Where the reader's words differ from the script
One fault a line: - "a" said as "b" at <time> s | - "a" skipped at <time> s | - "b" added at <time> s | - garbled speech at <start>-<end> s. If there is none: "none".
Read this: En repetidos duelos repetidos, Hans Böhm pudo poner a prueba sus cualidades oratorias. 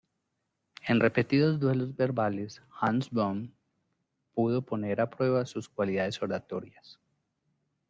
- "repetidos" said as "verbales" at 2.0 s